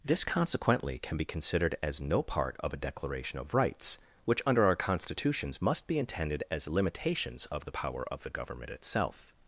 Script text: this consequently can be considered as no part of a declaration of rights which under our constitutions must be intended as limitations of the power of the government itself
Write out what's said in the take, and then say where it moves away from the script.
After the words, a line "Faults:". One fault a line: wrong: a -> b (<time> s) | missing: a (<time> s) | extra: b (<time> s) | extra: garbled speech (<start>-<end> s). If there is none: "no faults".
this consequently can be considered as no part of a declaration of rights which under our constitutions must be intended as limitations of the power of the government itself
Faults:
no faults